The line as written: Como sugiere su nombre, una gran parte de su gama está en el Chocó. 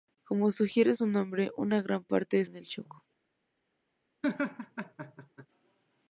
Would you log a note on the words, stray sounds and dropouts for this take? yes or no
yes